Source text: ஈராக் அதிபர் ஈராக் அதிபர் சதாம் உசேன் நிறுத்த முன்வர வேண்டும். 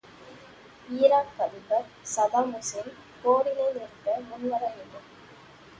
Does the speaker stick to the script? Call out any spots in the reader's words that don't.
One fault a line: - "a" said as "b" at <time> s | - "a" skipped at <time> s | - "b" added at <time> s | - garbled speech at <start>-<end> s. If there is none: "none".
- "ஈராக் அதிபர்" skipped at 1.9 s
- "போரினை" added at 3.2 s